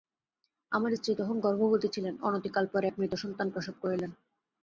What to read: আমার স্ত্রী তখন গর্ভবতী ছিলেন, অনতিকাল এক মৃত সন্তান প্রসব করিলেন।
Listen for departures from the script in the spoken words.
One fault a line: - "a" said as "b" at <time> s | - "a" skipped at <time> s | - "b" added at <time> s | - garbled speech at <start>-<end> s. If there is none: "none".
- "পরে" added at 2.7 s